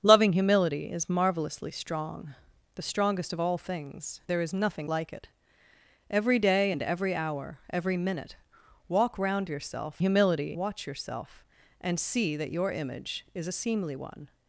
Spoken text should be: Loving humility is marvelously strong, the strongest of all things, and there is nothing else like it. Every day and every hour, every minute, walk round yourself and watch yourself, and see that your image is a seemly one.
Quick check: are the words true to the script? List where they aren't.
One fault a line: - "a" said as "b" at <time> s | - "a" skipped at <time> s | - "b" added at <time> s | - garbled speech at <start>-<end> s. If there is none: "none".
- "and" skipped at 4.2 s
- "else" skipped at 4.9 s
- "and" said as "humility" at 10.0 s